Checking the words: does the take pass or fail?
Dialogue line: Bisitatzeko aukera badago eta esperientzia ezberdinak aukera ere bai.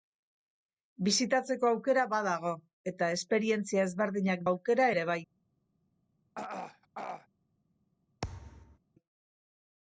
pass